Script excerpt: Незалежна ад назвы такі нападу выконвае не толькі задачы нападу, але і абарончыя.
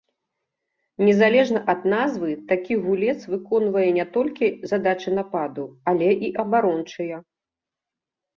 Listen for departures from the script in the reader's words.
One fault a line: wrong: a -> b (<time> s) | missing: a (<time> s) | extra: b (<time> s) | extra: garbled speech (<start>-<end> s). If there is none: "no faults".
wrong: нападу -> гулец (2.9 s)